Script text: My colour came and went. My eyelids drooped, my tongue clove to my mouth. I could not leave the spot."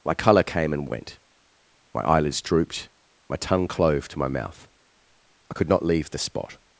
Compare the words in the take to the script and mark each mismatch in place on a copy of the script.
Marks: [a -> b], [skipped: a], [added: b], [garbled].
My colour came and went. My eyelids drooped, my tongue clove to my mouth. I could not leave the spot."